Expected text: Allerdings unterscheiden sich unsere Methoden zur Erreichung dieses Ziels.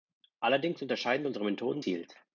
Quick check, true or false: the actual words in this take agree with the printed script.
false